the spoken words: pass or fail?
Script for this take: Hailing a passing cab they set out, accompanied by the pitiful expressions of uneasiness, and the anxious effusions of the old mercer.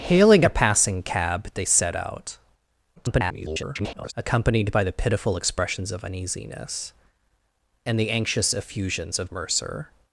fail